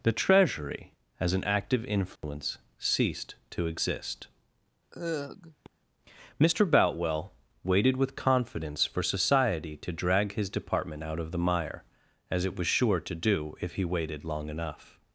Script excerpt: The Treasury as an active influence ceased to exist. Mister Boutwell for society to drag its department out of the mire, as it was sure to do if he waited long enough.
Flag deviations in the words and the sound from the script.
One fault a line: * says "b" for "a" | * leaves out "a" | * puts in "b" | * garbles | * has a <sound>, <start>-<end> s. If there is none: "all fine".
* has a dropout, 2.2-2.2 s
* has a sigh, 4.9-5.7 s
* puts in "waited with confidence"
* says "his" for "its"